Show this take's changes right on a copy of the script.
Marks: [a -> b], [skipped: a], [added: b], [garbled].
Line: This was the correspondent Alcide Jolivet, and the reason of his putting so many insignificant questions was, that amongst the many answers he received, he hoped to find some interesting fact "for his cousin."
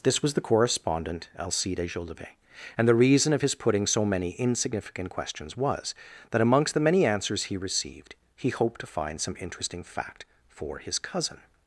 This was the correspondent Alcide Jolivet, and the reason of his putting so many insignificant questions was, that amongst the many answers he received, he hoped to find some interesting fact "for his cousin."